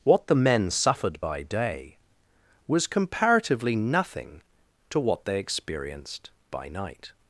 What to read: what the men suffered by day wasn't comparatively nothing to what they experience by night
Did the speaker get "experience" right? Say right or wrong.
wrong